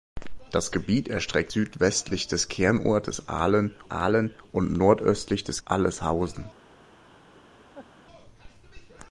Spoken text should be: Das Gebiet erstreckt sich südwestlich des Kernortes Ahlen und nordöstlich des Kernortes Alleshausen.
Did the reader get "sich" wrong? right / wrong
wrong